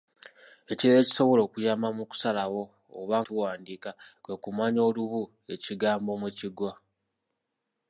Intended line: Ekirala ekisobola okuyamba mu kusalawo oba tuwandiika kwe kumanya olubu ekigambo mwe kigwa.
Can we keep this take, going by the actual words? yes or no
yes